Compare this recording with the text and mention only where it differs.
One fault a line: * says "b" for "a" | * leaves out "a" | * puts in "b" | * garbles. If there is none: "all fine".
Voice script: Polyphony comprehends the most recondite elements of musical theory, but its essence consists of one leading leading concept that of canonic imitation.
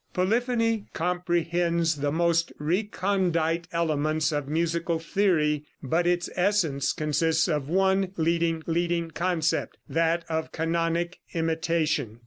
all fine